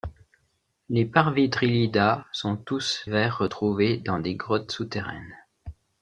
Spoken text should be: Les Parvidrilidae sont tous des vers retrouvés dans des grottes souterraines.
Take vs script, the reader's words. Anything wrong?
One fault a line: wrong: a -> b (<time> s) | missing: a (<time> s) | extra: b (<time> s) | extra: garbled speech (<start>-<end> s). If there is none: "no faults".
missing: des (3.0 s)